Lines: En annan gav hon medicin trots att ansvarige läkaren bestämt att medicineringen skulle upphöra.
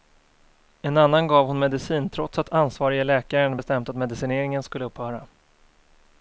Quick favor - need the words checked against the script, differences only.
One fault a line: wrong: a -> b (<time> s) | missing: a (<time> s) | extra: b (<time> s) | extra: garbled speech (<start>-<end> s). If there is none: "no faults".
no faults